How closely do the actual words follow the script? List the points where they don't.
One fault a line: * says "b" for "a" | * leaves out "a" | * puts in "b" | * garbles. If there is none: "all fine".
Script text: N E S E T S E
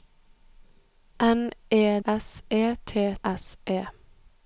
all fine